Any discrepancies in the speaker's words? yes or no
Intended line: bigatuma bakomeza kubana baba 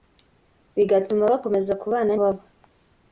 no